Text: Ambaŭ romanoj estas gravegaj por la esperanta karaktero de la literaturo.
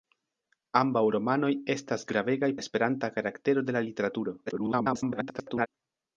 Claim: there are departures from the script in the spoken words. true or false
true